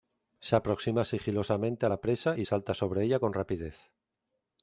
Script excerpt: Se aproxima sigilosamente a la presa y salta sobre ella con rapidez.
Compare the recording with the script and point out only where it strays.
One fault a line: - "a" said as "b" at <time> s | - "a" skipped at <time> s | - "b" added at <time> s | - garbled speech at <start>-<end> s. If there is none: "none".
none